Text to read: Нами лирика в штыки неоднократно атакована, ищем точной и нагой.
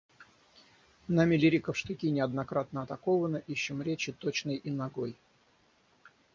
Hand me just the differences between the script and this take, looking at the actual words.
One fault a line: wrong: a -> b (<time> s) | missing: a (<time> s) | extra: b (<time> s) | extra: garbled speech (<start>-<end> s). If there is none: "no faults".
extra: речи (3.8 s)